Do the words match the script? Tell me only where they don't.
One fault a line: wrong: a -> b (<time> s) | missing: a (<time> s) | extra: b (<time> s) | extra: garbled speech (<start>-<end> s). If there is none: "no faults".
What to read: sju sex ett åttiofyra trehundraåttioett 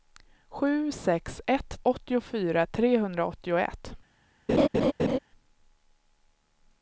no faults